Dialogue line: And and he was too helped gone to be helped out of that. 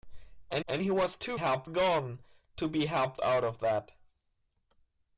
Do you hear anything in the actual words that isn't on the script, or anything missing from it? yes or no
no